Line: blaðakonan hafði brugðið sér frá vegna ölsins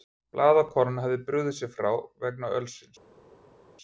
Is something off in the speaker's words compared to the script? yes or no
no